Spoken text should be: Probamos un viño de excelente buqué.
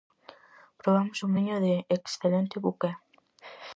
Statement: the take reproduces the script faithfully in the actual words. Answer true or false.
true